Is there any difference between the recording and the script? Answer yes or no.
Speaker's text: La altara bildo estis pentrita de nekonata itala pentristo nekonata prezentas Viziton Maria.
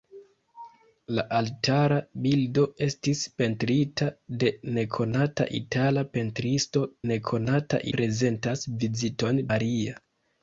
no